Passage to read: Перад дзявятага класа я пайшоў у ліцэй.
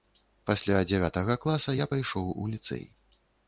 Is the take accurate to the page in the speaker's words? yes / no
no